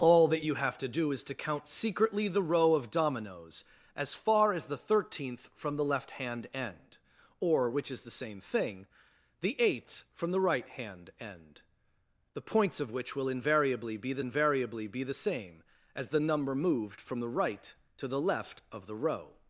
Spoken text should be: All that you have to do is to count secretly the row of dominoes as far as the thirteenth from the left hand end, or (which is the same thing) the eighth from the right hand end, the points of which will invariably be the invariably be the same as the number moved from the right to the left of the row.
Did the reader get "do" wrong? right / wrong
right